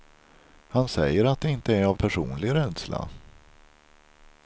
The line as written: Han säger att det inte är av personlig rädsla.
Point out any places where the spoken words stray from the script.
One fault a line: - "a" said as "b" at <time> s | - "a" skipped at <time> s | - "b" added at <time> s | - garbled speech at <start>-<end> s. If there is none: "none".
none